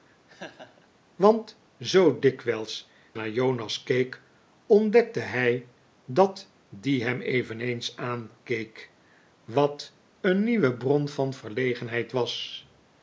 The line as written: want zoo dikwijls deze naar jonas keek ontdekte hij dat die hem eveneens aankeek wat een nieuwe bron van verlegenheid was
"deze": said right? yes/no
no